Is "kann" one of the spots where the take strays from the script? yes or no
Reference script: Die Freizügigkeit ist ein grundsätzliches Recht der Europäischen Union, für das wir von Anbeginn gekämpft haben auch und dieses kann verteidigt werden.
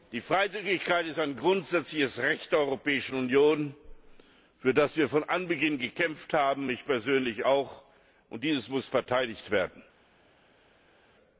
yes